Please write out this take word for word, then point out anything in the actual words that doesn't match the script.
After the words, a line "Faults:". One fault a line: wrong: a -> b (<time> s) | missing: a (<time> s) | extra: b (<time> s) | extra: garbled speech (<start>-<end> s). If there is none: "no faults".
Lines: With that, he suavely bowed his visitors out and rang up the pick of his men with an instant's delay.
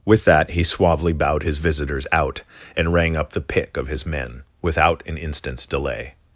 With that, he suavely bowed his visitors out and rang up the pick of his men without an instant's delay.
Faults:
wrong: with -> without (4.6 s)